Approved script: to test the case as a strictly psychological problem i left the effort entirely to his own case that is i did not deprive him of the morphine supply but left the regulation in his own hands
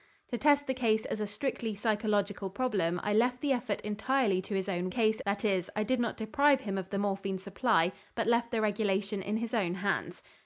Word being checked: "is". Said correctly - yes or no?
yes